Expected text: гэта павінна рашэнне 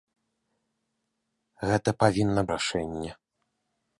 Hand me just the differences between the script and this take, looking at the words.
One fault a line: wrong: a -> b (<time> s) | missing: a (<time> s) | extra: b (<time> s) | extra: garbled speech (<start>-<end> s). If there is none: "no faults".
no faults